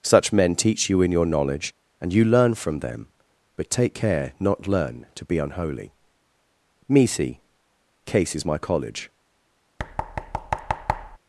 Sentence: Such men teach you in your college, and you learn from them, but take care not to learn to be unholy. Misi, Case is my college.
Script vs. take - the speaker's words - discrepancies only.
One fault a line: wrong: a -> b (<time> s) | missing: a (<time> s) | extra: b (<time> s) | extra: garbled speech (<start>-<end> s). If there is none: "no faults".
wrong: college -> knowledge (1.2 s)
missing: to (4.7 s)